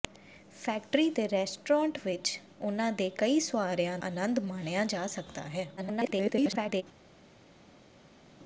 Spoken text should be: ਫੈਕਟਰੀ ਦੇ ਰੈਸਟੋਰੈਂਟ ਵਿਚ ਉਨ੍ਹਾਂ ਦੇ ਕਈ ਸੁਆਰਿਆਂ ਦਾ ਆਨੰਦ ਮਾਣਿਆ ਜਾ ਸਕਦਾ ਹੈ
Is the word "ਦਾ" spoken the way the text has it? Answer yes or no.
no